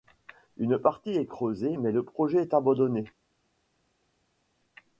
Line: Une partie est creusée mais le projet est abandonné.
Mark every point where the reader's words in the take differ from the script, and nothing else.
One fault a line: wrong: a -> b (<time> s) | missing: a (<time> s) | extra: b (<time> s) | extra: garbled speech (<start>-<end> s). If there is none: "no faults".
no faults